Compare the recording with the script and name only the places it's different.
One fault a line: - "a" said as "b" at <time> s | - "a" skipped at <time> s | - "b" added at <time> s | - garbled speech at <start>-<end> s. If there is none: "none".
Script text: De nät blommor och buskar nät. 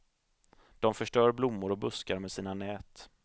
- "nät" said as "förstör" at 0.9 s
- "med sina" added at 2.2 s